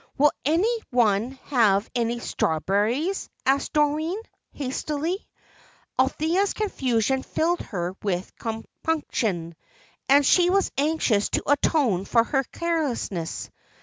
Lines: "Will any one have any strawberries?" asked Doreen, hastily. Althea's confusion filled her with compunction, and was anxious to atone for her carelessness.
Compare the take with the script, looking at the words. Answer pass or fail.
fail